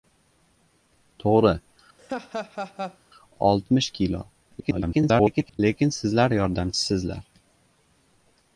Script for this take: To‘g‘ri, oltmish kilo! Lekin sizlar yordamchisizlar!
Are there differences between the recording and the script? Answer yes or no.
yes